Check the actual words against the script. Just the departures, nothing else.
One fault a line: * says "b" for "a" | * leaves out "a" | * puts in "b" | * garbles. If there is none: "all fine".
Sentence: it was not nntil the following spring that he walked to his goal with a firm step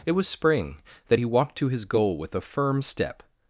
* leaves out "not nntil the following"